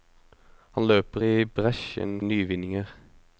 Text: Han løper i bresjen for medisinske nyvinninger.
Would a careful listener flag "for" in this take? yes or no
yes